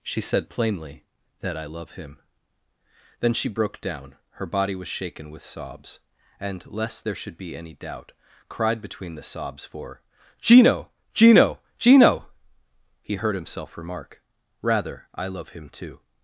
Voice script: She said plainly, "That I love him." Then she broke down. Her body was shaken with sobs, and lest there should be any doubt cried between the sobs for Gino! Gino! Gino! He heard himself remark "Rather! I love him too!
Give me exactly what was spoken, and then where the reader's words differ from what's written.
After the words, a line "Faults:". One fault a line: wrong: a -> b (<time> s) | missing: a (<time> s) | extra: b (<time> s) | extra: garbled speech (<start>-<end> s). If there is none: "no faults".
She said plainly, "That I love him." Then she broke down. Her body was shaken with sobs, and lest there should be any doubt cried between the sobs for Gino! Gino! Gino! He heard himself remark "Rather! I love him too!
Faults:
no faults